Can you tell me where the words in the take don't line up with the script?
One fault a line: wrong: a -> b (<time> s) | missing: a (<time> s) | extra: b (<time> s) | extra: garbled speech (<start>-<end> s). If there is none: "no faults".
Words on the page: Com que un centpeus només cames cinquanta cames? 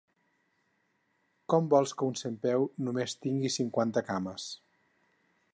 extra: vols (1.8 s)
wrong: cames -> tingui (3.3 s)